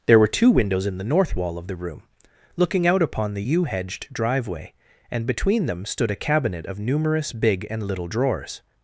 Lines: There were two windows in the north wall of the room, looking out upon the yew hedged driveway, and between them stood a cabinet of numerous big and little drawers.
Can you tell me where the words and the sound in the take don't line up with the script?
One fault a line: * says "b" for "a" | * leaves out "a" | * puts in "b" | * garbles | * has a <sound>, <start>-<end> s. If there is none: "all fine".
all fine